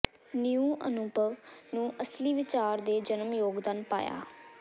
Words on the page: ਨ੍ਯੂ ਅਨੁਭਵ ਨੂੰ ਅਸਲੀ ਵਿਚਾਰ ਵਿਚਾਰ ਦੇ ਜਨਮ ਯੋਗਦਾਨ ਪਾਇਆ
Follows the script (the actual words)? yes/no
no